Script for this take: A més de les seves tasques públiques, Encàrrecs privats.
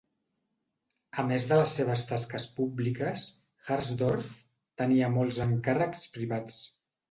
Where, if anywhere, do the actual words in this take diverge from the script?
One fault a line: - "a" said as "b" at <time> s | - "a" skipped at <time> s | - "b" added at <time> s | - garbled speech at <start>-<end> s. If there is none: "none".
- "Harsdorff tenia molts" added at 3.7 s